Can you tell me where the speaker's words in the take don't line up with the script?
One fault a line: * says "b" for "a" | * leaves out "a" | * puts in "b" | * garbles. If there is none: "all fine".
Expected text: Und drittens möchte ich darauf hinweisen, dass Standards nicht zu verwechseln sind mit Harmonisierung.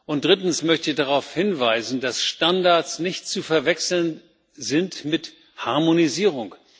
all fine